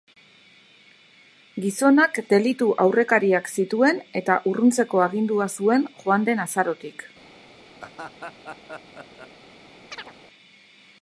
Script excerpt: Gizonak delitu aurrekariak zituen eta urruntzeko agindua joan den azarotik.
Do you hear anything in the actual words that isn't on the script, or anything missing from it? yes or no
yes